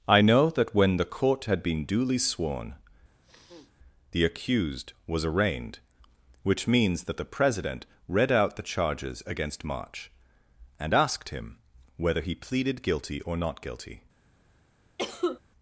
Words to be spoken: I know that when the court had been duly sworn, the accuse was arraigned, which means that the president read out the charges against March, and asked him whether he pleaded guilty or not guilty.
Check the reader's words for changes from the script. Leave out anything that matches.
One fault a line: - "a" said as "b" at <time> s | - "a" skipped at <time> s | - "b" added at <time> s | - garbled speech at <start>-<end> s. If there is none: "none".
- "accuse" said as "accused" at 4.2 s